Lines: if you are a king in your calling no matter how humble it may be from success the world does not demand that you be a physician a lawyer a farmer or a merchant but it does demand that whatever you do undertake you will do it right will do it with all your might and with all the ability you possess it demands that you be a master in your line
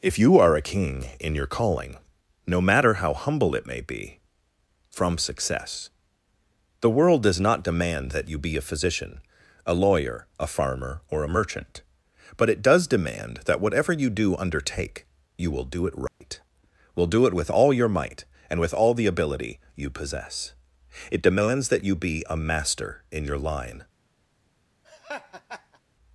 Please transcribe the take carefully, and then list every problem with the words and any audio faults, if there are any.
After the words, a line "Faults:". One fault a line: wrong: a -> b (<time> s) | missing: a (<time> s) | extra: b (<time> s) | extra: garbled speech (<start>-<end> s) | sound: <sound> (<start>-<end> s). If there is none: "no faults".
if you are a king in your calling no matter how humble it may be from success the world does not demand that you be a physician a lawyer a farmer or a merchant but it does demand that whatever you do undertake you will do it right will do it with all your might and with all the ability you possess it demands that you be a master in your line
Faults:
sound: dropout (16.1-16.2 s)
sound: laugh (24.8-25.8 s)